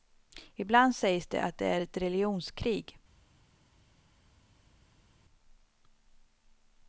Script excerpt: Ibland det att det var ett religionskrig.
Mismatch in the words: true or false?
true